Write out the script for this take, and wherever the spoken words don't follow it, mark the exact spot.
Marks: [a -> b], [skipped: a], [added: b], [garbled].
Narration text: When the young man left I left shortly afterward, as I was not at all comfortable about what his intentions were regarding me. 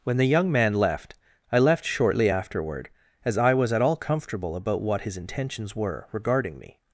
When the young man left I left shortly afterward, as I was [skipped: not] at all comfortable about what his intentions were regarding me.